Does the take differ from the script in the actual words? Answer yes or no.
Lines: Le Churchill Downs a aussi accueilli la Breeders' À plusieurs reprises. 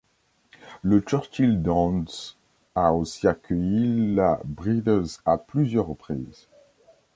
no